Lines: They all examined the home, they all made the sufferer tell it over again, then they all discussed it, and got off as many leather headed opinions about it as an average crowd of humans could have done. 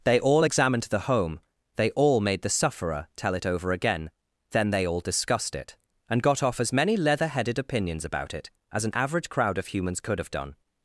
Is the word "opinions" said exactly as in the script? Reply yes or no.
yes